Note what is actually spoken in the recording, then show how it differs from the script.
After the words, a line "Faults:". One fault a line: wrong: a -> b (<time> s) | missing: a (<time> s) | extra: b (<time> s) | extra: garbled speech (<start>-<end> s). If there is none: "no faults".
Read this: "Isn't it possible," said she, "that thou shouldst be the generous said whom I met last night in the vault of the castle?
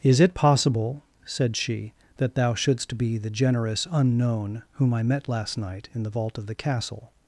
"Is it possible," said she, "that thou shouldst be the generous unknown whom I met last night in the vault of the castle?
Faults:
wrong: Isn't -> Is (0.0 s)
wrong: said -> unknown (3.9 s)